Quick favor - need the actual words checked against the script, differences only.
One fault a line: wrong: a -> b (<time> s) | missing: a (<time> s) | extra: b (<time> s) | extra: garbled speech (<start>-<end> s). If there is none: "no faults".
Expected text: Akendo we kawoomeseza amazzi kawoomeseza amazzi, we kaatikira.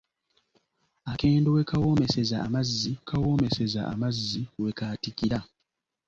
no faults